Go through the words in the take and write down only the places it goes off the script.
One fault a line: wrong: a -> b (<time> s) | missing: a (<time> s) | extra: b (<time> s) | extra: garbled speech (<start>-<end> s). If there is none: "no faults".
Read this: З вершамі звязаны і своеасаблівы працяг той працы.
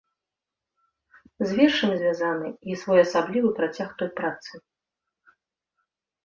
no faults